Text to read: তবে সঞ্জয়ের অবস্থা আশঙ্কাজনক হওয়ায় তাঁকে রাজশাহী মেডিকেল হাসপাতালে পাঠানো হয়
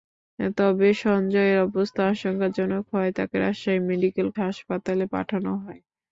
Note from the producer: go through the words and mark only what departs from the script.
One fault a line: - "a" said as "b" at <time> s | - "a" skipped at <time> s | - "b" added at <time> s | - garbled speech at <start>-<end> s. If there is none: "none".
none